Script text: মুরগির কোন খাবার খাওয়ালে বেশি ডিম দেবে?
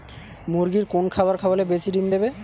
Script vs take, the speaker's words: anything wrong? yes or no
no